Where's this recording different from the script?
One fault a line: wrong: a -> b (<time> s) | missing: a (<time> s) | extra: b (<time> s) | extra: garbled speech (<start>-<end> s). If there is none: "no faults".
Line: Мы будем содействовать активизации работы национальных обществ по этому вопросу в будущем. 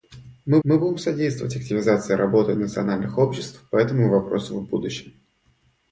extra: мы (0.6 s)